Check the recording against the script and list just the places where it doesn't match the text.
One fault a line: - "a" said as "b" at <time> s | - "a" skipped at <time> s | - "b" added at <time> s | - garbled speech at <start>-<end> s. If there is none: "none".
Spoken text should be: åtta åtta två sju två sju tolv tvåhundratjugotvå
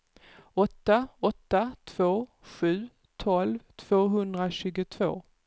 - "två sju" skipped at 2.9 s